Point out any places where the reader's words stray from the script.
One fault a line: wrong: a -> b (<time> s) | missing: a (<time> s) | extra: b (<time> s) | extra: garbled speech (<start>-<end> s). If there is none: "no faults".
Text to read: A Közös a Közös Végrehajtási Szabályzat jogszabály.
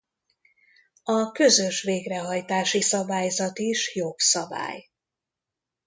missing: a Közös (1.8 s)
extra: is (3.6 s)